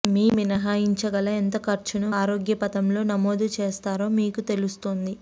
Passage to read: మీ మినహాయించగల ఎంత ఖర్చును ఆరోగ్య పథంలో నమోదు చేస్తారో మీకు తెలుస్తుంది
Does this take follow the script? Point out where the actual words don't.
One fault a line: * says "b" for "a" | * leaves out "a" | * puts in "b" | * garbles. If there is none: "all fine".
all fine